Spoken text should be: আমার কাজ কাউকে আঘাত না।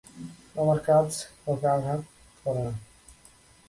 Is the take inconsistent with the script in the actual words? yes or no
yes